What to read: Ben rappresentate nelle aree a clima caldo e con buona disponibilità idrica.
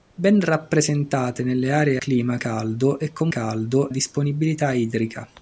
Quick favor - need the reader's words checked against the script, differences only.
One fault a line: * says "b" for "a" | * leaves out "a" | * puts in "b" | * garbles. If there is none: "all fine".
* leaves out "a"
* says "caldo" for "buona"